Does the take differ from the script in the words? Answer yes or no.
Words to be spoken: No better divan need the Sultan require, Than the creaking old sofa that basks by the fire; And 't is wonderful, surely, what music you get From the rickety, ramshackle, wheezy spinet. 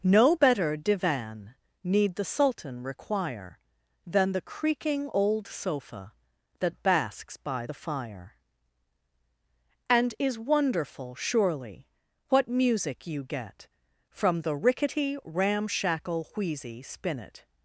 yes